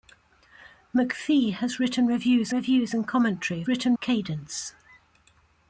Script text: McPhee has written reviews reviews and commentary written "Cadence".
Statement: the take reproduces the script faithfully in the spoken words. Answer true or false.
true